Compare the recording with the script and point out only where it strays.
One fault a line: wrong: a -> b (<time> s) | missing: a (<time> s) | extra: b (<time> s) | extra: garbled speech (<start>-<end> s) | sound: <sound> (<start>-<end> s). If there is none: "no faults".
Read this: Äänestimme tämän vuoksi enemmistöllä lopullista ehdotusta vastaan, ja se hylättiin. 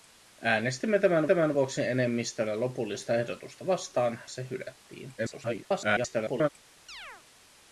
extra: tämän (1.2 s)
missing: ja (4.2 s)
extra: garbled speech (5.2-6.5 s)
sound: chirp (6.9-7.2 s)